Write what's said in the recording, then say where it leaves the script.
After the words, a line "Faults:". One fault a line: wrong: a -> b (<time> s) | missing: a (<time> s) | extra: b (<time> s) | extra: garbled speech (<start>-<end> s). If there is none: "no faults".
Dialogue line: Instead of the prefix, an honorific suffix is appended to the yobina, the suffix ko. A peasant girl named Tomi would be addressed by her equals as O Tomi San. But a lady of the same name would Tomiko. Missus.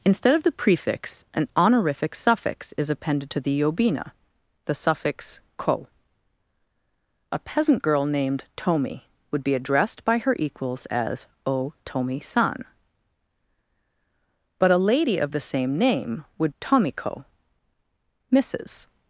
Instead of the prefix, an honorific suffix is appended to the yobina, the suffix ko. A peasant girl named Tomi would be addressed by her equals as O Tomi San. But a lady of the same name would Tomiko. Missus.
Faults:
no faults